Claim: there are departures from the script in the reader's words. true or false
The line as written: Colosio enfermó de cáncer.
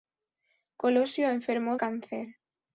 true